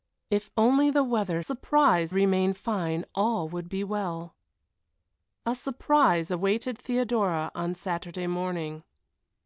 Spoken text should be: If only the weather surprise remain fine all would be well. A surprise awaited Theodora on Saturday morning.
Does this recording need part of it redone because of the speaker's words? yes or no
no